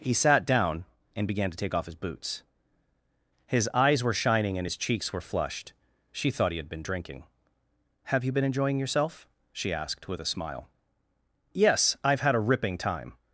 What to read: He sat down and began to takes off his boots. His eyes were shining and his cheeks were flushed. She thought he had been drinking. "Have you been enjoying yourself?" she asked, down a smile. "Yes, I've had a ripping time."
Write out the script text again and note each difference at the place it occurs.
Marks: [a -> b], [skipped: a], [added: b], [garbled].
He sat down and began to [takes -> take] off his boots. His eyes were shining and his cheeks were flushed. She thought he had been drinking. "Have you been enjoying yourself?" she asked, [down -> with] a smile. "Yes, I've had a ripping time."